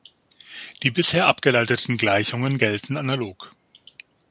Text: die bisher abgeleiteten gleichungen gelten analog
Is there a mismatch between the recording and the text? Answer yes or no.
no